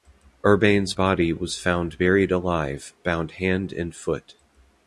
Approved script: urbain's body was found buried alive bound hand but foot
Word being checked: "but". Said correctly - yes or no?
no